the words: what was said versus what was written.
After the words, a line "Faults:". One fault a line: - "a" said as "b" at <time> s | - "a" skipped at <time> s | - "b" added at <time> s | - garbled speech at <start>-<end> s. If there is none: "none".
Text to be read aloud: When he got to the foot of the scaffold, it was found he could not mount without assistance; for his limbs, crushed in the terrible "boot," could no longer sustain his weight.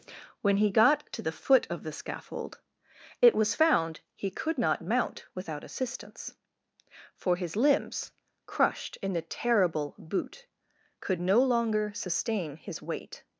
When he got to the foot of the scaffold, it was found he could not mount without assistance; for his limbs, crushed in the terrible "boot," could no longer sustain his weight.
Faults:
none